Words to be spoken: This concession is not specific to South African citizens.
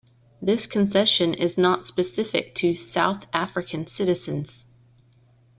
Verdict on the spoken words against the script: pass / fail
pass